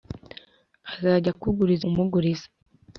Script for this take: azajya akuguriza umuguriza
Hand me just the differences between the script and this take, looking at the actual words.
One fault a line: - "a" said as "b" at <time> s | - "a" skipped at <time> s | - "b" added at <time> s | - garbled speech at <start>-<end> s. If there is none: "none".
none